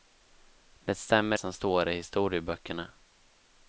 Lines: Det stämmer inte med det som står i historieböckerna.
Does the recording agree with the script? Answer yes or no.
no